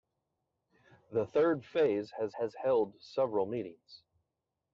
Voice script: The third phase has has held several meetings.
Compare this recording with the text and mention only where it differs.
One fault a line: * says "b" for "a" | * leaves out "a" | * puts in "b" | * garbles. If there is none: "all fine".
all fine